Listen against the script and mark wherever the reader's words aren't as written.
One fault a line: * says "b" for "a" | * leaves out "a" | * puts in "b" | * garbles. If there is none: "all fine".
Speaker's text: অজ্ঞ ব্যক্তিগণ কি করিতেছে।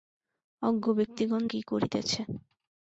all fine